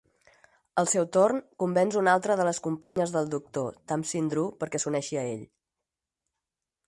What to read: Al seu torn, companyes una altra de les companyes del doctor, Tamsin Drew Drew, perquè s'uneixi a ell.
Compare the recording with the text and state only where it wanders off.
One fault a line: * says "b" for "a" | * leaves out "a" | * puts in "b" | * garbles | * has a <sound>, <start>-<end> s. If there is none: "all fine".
* says "convenç" for "companyes"
* has a dropout, 2.8-3.0 s
* leaves out "Drew"